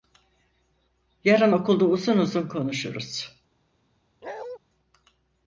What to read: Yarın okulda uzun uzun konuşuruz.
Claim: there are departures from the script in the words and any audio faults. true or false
true